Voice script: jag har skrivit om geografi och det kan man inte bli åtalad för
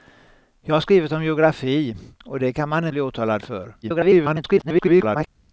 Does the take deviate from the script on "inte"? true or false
true